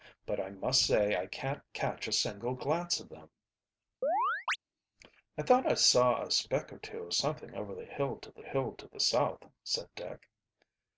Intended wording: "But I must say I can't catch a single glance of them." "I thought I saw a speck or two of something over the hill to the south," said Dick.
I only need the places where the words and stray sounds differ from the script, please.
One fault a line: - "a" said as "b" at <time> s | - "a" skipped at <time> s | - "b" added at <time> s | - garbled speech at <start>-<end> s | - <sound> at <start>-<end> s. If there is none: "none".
- chirp at 4.0-4.6 s
- "hill to the" added at 8.4 s